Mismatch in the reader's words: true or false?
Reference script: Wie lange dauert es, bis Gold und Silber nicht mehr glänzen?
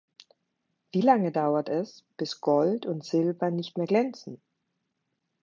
false